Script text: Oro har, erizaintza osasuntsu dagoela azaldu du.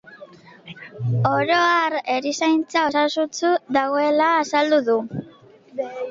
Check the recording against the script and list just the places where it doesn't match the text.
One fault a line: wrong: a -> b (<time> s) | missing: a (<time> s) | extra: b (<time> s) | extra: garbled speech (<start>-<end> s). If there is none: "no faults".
no faults